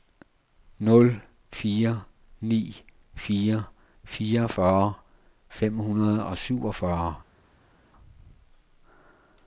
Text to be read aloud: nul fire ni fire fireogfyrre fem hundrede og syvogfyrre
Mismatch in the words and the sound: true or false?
false